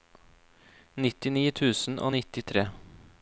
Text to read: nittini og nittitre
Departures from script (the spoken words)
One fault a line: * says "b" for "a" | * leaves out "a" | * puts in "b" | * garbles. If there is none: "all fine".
* puts in "tusen"